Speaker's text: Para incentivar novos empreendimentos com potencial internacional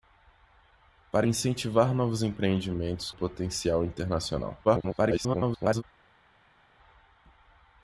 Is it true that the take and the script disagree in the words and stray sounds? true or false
true